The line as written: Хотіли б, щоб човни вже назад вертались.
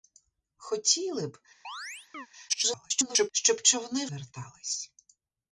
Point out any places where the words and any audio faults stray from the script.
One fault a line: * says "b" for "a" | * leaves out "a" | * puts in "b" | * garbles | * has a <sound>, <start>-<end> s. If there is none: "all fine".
* has a chirp, 1.6-2.3 s
* garbles
* leaves out "вже назад"